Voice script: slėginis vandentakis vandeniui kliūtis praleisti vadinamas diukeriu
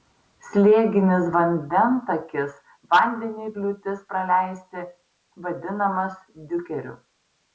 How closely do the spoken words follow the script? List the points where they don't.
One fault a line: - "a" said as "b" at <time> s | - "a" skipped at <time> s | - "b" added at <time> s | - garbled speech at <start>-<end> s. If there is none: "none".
none